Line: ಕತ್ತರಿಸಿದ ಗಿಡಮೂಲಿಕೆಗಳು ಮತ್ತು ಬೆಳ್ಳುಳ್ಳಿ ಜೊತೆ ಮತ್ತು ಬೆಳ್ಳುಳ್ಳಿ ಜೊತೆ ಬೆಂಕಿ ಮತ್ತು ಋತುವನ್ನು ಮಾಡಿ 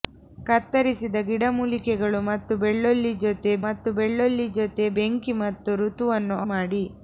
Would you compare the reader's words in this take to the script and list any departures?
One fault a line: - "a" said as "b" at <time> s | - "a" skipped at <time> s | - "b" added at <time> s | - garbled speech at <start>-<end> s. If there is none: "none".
none